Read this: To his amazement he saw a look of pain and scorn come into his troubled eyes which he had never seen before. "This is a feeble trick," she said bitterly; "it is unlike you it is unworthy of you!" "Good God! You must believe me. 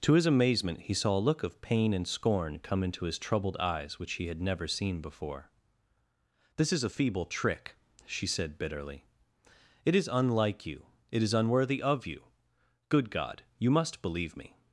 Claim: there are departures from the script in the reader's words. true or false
false